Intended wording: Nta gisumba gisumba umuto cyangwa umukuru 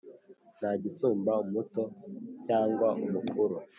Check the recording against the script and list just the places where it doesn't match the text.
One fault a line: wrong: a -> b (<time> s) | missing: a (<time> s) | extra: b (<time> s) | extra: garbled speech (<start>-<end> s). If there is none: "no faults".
missing: gisumba (1.3 s)